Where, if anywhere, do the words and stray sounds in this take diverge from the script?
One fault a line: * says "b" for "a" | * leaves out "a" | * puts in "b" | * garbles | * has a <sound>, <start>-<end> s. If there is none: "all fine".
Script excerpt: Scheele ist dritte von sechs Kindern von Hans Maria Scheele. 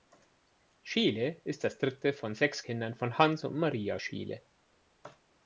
* puts in "das"
* puts in "und"